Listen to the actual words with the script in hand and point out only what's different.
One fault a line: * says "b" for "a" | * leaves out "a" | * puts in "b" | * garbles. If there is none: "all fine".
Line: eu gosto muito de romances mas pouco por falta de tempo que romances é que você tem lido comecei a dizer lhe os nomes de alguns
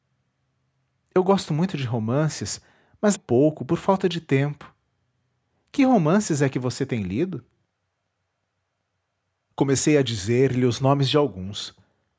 all fine